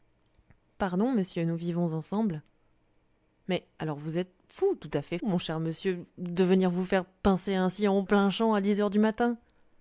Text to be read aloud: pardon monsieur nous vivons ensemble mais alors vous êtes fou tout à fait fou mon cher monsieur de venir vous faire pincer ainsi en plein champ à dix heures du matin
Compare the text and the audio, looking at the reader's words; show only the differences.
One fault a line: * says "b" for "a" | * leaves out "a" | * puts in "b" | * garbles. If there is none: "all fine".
* leaves out "fou"